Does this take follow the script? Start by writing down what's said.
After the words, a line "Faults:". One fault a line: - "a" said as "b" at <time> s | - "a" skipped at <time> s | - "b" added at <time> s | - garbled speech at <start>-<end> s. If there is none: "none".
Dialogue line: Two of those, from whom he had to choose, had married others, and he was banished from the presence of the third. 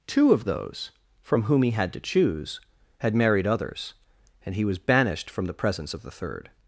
Two of those, from whom he had to choose, had married others, and he was banished from the presence of the third.
Faults:
none